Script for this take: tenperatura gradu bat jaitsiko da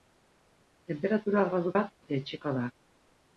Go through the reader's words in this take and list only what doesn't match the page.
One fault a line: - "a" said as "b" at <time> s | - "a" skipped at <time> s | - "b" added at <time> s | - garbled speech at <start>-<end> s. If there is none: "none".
none